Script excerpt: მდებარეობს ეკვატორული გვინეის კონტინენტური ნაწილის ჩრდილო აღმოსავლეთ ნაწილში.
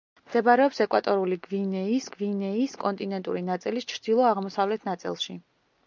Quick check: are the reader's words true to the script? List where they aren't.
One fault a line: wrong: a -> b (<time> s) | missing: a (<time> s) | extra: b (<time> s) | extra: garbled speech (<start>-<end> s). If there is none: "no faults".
extra: გვინეის (2.1 s)